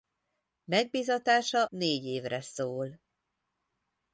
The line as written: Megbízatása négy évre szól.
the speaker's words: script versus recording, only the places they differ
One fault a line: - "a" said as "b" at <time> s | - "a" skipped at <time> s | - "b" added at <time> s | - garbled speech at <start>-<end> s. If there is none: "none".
none